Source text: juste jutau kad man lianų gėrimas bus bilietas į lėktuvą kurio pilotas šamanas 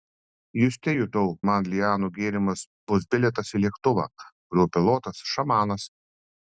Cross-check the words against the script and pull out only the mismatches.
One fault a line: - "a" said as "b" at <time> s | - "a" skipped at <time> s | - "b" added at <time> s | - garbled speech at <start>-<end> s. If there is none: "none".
- "kad" skipped at 1.3 s